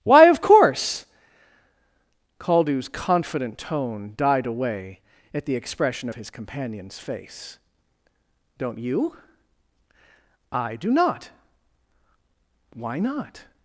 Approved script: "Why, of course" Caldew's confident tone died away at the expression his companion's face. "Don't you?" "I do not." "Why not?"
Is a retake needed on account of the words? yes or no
no